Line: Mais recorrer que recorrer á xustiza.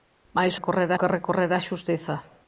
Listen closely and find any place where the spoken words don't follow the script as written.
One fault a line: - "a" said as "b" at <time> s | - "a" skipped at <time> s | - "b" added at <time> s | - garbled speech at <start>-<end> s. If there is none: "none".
none